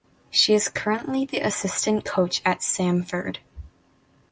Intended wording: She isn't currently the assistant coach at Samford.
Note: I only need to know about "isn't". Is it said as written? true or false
false